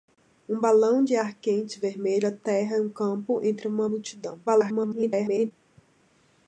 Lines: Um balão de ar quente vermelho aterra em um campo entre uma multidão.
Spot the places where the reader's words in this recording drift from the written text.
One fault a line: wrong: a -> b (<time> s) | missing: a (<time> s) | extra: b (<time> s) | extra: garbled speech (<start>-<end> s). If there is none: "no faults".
extra: garbled speech (4.5-5.5 s)